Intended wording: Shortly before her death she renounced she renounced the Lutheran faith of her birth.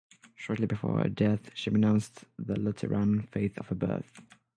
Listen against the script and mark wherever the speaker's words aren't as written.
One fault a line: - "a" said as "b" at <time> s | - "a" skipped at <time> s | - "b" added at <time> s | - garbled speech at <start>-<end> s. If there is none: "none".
- "she renounced" skipped at 2.2 s